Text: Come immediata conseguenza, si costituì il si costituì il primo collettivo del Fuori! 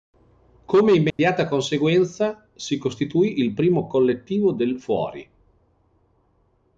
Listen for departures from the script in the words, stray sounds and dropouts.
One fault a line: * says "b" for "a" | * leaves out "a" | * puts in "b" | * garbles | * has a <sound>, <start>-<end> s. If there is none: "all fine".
* has a dropout, 1.1-1.2 s
* leaves out "si costituì il"